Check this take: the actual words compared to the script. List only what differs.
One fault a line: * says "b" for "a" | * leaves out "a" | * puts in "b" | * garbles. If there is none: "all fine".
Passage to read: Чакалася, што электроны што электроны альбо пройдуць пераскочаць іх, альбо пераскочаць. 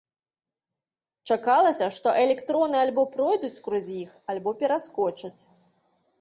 * leaves out "што электроны"
* says "скрозь" for "пераскочаць"